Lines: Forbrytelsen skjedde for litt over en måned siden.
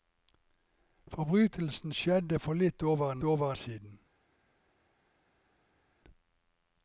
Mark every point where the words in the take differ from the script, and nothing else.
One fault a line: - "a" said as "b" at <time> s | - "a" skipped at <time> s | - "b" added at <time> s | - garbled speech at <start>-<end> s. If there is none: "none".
- "måned" said as "over" at 3.2 s